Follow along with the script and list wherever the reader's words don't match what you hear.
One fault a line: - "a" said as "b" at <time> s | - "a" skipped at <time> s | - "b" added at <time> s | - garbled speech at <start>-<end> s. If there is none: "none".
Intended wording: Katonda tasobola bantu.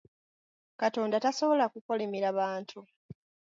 - "kukolimira" added at 1.7 s